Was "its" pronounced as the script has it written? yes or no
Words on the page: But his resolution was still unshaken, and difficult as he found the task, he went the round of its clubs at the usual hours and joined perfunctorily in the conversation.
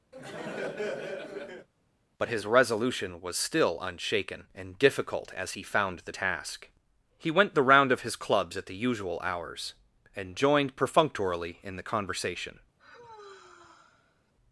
no